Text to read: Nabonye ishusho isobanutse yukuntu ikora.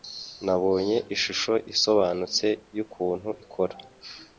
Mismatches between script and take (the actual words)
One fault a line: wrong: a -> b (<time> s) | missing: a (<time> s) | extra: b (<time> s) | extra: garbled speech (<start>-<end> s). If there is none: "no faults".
no faults